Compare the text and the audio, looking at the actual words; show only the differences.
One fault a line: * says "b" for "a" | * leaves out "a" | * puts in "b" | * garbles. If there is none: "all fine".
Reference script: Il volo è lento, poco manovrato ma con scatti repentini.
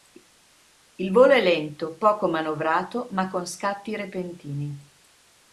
all fine